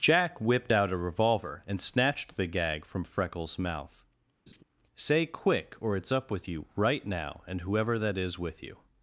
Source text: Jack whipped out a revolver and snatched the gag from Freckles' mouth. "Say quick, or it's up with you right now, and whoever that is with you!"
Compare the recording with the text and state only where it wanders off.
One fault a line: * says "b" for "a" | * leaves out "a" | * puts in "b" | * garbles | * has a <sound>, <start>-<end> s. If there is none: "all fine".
* has a laugh, 4.5-4.6 s